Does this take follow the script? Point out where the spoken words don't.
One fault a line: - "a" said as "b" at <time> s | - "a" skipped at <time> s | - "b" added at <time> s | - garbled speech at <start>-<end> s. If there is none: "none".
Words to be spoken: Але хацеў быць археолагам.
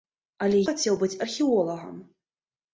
none